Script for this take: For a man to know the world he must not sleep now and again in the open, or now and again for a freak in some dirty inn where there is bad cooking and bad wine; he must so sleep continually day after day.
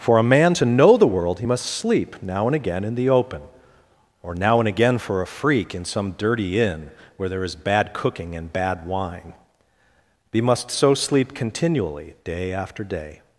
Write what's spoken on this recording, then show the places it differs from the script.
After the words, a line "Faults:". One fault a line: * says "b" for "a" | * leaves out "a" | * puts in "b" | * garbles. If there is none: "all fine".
For a man to know the world he must sleep now and again in the open, or now and again for a freak in some dirty inn where there is bad cooking and bad wine; he must so sleep continually day after day.
Faults:
* leaves out "not"